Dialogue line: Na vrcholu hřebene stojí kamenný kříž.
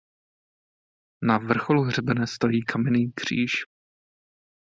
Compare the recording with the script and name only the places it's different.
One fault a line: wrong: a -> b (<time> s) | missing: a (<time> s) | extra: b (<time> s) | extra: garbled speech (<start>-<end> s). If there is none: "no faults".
no faults